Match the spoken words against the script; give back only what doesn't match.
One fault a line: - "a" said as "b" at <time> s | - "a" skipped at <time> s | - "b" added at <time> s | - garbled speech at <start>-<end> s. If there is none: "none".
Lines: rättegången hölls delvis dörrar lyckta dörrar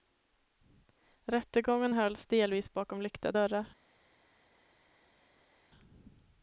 - "dörrar" said as "bakom" at 2.7 s